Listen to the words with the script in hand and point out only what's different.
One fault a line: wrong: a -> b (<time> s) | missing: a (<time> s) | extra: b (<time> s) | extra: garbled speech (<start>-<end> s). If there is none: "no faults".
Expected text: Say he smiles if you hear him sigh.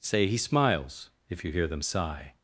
wrong: him -> them (1.7 s)